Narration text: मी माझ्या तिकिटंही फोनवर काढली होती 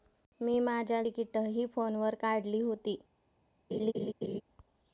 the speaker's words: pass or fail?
pass